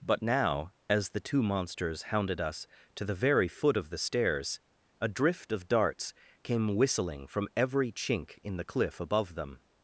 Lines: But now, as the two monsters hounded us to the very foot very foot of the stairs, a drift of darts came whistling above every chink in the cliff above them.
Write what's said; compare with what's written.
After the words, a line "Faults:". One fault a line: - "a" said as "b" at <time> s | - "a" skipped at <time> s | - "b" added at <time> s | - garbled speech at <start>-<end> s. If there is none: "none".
But now, as the two monsters hounded us to the very foot of the stairs, a drift of darts came whistling from every chink in the cliff above them.
Faults:
- "very foot" skipped at 3.8 s
- "above" said as "from" at 7.3 s